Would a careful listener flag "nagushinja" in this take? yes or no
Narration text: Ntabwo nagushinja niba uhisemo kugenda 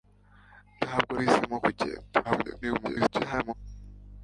yes